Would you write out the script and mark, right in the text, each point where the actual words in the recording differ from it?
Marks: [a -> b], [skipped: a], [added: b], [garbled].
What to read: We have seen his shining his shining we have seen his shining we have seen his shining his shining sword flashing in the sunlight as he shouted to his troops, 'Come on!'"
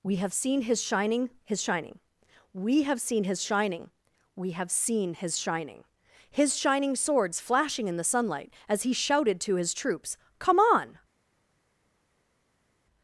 We have seen his shining his shining we have seen his shining we have seen his shining his shining [sword -> swords] flashing in the sunlight as he shouted to his troops, 'Come on!'"